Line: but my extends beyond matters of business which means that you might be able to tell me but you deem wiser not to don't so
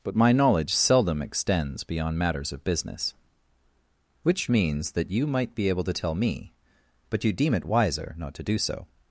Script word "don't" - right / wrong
wrong